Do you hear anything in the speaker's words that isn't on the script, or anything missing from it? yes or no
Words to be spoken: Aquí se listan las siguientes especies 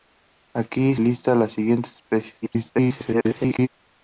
yes